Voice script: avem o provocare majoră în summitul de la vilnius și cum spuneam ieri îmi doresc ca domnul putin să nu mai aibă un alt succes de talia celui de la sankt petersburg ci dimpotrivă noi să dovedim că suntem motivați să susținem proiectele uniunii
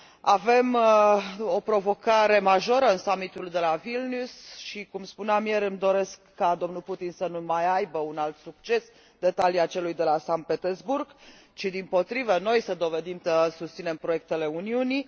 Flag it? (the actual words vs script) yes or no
yes